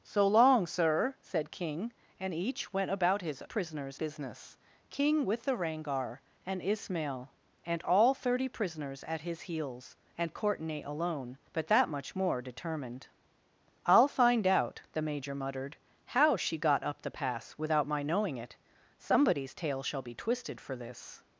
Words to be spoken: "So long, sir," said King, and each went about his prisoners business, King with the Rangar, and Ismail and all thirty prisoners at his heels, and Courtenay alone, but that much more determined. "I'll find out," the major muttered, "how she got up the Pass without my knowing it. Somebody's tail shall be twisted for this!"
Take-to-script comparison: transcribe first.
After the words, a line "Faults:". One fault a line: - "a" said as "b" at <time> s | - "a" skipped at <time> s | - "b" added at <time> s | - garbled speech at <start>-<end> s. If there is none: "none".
"So long, sir," said King, and each went about his prisoners business, King with the Rangar, and Ismail and all thirty prisoners at his heels, and Courtenay alone, but that much more determined. "I'll find out," the major muttered, "how she got up the Pass without my knowing it. Somebody's tail shall be twisted for this!"
Faults:
none